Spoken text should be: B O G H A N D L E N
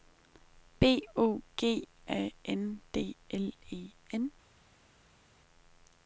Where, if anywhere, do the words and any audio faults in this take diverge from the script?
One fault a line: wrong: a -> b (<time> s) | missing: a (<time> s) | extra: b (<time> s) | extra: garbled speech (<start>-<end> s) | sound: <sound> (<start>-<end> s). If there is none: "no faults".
missing: H (1.9 s)